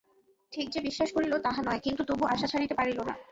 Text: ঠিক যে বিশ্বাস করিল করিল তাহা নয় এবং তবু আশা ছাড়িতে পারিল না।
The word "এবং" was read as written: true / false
false